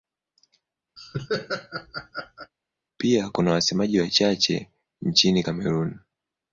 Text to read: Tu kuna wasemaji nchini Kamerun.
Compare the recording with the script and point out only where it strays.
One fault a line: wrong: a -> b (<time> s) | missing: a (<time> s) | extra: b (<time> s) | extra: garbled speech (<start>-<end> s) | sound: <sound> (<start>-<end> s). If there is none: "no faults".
sound: laugh (1.0-2.5 s)
wrong: Tu -> Pia (3.0 s)
extra: wachache (4.0 s)